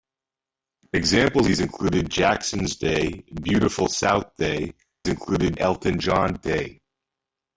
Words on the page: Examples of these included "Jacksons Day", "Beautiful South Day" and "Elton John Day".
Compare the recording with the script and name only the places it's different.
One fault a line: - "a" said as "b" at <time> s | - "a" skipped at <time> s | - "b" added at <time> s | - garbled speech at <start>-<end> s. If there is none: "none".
- "of" skipped at 1.5 s
- "and" said as "included" at 5.1 s